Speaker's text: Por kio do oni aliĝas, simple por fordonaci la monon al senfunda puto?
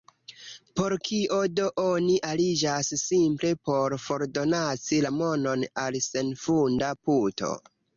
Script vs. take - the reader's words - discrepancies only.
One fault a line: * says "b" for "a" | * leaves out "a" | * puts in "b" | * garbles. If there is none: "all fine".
all fine